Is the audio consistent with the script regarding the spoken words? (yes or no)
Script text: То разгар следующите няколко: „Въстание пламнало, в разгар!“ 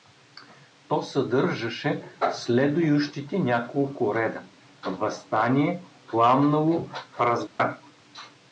no